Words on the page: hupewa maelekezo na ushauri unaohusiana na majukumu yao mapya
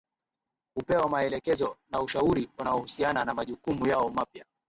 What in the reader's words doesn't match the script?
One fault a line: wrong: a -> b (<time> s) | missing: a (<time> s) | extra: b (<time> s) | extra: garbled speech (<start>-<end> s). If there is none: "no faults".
no faults